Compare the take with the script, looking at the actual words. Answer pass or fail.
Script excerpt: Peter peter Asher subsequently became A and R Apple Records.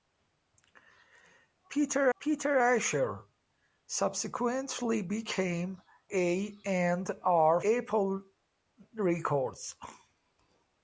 pass